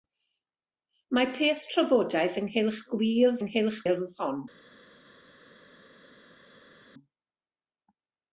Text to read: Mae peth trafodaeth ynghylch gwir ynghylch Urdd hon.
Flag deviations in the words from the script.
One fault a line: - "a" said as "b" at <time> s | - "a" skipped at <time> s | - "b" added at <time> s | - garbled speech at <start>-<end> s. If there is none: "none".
none